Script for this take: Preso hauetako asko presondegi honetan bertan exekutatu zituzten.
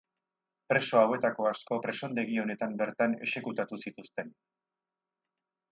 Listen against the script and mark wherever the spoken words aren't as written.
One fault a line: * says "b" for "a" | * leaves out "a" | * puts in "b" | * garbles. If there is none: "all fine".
all fine